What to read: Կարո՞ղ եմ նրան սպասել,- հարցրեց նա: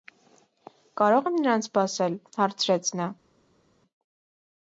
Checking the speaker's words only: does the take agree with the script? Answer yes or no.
yes